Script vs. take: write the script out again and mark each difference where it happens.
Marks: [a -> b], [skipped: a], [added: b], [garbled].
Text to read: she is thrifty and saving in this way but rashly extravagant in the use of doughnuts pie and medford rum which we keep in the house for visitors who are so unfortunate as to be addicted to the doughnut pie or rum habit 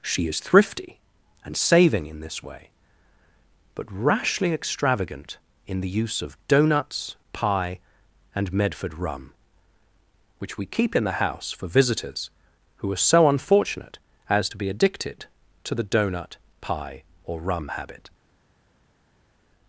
she is thrifty and saving in this way but rashly extravagant in the use of doughnuts pie and medford rum which we keep in the house for visitors who are so unfortunate as to be addicted to the doughnut pie or rum habit